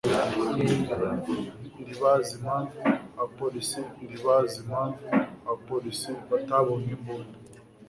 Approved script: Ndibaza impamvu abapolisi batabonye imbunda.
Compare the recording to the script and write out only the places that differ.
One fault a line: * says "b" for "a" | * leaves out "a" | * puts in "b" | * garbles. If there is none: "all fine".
* puts in "ndibaza impamvu abapolisi"